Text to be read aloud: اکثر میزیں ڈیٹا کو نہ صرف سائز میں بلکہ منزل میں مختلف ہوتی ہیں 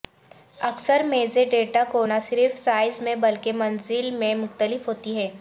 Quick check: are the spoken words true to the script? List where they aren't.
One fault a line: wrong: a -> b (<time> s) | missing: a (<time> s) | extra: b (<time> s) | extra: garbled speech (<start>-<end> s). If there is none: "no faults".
no faults